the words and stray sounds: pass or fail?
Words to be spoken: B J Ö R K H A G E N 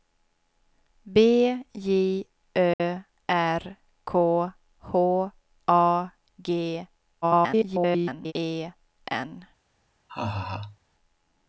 fail